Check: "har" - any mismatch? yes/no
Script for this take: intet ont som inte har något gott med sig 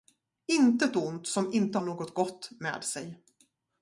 yes